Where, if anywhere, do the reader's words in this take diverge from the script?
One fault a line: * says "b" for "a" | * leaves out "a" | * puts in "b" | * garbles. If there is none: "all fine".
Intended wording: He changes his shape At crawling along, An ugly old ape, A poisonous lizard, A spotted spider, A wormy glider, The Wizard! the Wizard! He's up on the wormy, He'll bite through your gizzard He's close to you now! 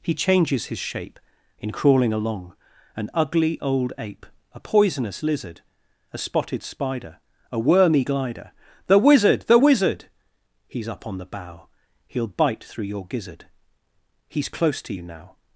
* says "In" for "At"
* says "bough" for "wormy"